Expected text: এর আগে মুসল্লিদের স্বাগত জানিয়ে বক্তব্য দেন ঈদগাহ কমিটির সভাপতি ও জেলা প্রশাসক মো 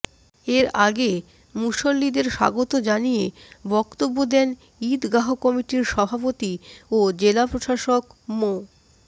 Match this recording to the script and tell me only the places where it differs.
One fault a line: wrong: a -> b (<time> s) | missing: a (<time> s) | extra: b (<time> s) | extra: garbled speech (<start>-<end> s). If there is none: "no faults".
no faults